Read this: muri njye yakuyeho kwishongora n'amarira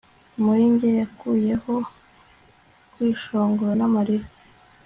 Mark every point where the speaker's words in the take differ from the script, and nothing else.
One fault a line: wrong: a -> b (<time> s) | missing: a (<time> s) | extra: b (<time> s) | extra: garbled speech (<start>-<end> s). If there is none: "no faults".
no faults